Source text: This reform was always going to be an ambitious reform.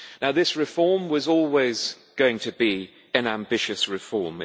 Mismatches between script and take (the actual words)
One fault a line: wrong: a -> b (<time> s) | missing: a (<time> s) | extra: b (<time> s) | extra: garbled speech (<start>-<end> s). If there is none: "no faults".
no faults